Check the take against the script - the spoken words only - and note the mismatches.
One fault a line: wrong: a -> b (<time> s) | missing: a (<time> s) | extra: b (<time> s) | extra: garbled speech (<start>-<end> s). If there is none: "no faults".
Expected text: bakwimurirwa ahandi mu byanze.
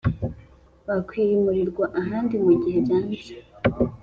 extra: gihe (2.6 s)